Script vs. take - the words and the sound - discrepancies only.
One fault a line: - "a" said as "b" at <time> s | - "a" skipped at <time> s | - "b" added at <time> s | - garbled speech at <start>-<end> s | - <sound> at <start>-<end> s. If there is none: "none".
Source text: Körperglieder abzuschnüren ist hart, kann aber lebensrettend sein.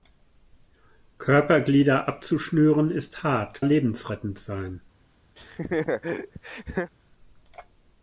- "kann aber" skipped at 3.6 s
- laugh at 5.4-6.9 s